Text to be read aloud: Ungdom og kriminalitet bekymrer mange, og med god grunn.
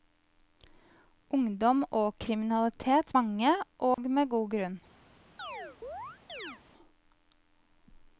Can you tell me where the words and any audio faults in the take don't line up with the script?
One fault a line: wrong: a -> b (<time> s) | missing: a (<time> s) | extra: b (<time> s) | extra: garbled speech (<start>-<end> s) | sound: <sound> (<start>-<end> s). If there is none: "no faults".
missing: bekymrer (3.1 s)
sound: dropout (3.9-4.0 s)
sound: chirp (5.4-6.6 s)